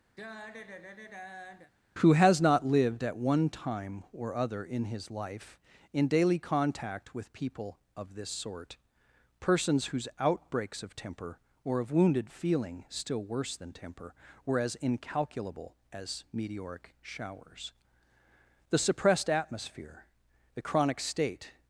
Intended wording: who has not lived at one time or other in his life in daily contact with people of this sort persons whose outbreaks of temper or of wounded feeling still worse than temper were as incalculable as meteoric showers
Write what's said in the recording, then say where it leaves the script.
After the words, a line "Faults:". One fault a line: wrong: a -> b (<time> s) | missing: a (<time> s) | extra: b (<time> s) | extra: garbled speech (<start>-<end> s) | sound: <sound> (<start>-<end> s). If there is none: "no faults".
who has not lived at one time or other in his life in daily contact with people of this sort persons whose outbreaks of temper or of wounded feeling still worse than temper were as incalculable as meteoric showers the suppressed atmosphere the chronic state
Faults:
sound: sigh (0.2-1.7 s)
extra: the suppressed atmosphere the chronic state (18.7 s)